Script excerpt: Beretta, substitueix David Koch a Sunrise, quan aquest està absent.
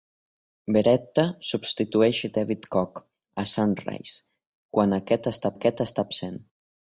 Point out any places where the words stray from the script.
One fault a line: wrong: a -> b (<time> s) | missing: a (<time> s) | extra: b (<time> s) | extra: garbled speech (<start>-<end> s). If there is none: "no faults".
extra: aquest està (5.5 s)